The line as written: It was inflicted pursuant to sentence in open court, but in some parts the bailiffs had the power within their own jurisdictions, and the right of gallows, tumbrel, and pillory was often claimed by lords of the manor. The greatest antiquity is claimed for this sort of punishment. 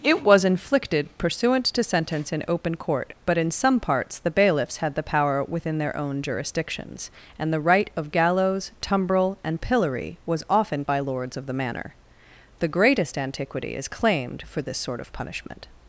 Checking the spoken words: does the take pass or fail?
fail